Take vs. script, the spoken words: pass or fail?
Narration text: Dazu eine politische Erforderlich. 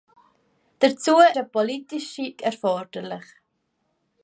pass